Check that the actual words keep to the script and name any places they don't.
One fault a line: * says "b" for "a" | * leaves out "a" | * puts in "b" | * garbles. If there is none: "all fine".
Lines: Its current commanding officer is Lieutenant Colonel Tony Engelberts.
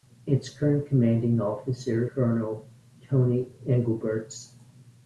* leaves out "is Lieutenant"